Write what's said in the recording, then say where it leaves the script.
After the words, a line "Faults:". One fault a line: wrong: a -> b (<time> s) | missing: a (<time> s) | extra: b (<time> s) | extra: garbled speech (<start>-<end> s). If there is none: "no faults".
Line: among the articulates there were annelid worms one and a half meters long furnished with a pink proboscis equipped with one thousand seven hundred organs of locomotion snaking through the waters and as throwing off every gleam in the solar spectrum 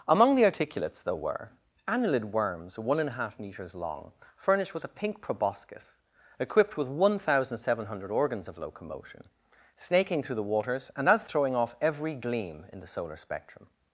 among the articulates there were annelid worms one and a half meters long furnished with a pink proboscis equipped with one thousand seven hundred organs of locomotion snaking through the waters and as throwing off every gleam in the solar spectrum
Faults:
no faults